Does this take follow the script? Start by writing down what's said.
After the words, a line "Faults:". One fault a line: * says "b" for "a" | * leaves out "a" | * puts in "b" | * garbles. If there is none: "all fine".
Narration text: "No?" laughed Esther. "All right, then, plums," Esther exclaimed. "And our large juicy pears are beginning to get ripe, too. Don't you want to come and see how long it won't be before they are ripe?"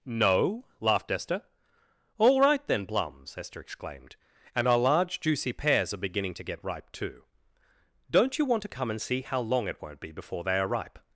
"No?" laughed Esther. "All right, then, plums," Esther exclaimed. "And our large juicy pears are beginning to get ripe, too. Don't you want to come and see how long it won't be before they are ripe?"
Faults:
all fine